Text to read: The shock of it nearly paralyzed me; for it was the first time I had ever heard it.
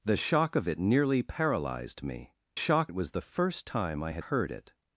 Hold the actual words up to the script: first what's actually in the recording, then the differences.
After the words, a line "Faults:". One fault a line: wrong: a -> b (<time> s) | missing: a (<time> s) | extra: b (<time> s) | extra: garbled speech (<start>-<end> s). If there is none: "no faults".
The shock of it nearly paralyzed me; shock it was the first time I had heard it.
Faults:
wrong: for -> shock (2.5 s)
missing: ever (4.2 s)